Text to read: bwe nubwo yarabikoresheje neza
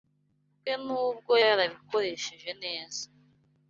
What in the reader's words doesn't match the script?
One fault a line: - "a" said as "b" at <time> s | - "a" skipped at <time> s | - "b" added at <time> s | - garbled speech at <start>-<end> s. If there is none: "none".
none